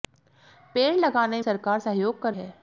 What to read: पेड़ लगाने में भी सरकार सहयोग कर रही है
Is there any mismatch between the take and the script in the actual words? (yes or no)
yes